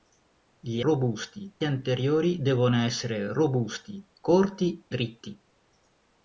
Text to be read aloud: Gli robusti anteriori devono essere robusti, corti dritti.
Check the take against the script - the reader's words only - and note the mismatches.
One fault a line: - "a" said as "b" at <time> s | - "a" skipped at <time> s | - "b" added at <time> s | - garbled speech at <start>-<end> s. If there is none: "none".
none